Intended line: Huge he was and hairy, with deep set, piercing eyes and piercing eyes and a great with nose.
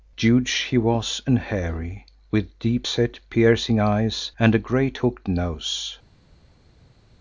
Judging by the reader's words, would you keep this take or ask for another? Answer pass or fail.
fail